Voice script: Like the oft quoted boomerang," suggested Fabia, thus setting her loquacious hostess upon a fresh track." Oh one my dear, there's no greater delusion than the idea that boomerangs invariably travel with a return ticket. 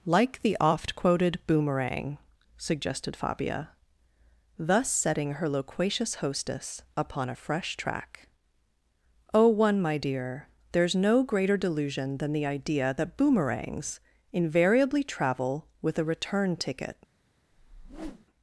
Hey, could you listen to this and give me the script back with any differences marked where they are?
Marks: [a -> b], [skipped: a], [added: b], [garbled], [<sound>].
Like the oft quoted boomerang," suggested Fabia, thus setting her loquacious hostess upon a fresh track." Oh one my dear, there's no greater delusion than the idea that boomerangs invariably travel with a return ticket. [whoosh]